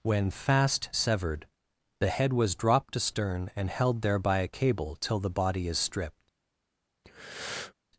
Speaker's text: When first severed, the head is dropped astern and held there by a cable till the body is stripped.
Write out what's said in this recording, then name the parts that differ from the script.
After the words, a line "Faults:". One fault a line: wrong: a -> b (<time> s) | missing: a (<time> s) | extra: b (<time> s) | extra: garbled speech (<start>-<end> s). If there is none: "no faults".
When fast severed, the head was dropped astern and held there by a cable till the body is stripped.
Faults:
wrong: first -> fast (0.3 s)
wrong: is -> was (2.3 s)